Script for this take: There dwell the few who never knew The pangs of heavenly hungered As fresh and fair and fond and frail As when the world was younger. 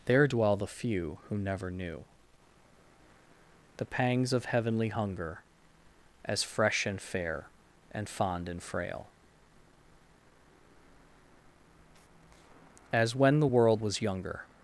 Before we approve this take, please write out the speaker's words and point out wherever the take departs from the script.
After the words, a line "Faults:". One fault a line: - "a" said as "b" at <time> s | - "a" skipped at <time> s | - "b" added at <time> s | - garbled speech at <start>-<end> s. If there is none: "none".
There dwell the few who never knew The pangs of heavenly hunger As fresh and fair and fond and frail As when the world was younger.
Faults:
- "hungered" said as "hunger" at 4.9 s